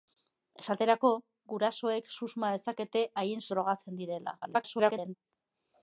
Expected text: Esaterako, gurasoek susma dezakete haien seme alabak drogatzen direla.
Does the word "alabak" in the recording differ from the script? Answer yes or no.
yes